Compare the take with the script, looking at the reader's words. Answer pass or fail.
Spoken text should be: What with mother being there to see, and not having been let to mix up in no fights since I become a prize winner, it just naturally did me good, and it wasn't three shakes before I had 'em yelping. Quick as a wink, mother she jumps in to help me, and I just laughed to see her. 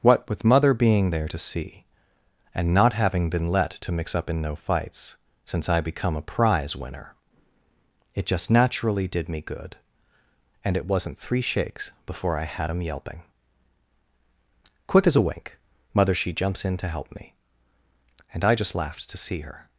pass